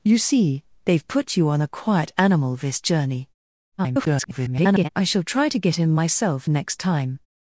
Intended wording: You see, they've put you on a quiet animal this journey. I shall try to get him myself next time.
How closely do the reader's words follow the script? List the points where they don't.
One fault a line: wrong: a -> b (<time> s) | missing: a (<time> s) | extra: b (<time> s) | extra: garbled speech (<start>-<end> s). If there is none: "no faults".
extra: garbled speech (3.8-4.9 s)